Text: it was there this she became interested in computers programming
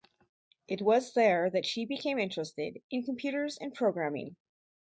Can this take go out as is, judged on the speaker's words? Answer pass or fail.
fail